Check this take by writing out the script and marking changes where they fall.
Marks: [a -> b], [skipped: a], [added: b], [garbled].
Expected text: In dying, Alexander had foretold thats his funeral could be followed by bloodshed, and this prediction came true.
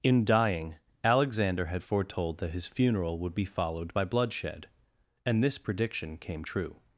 In dying, Alexander had foretold [thats -> that] his funeral [could -> would] be followed by bloodshed, and this prediction came true.